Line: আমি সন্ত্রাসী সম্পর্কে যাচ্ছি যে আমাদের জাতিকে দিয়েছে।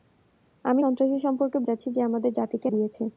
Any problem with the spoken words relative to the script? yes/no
no